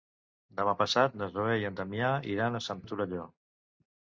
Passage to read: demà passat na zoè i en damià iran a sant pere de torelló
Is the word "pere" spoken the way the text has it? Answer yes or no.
no